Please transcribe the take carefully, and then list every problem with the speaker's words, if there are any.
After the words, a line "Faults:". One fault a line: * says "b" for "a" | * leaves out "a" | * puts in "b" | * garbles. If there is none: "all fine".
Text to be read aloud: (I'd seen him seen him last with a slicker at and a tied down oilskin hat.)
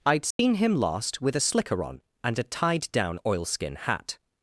(I'd seen him last with a slicker on and a tied down oilskin hat.)
Faults:
* leaves out "seen him"
* says "on" for "at"